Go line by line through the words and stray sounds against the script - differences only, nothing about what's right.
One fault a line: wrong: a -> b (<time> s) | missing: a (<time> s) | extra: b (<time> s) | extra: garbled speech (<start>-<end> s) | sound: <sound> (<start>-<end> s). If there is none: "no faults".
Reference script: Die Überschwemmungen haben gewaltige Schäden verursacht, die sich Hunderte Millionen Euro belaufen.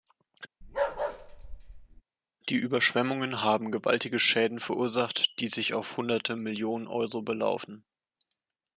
sound: bark (0.6-2.0 s)
extra: auf (5.7 s)